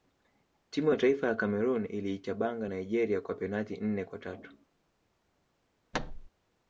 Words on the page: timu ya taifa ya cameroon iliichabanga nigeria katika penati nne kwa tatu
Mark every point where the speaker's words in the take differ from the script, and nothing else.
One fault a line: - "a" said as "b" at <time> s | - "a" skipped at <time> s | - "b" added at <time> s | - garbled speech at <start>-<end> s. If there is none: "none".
- "katika" said as "kwa" at 3.2 s